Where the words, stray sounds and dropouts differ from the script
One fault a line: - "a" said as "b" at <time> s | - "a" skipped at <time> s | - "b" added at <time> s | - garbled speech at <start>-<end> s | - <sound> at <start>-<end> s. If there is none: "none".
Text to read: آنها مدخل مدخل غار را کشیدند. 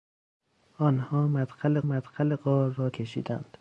none